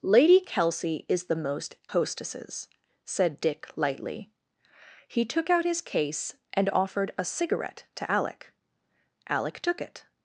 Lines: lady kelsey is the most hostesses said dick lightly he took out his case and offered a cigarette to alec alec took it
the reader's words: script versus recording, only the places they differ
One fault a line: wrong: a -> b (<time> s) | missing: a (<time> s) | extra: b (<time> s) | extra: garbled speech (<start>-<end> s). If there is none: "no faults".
no faults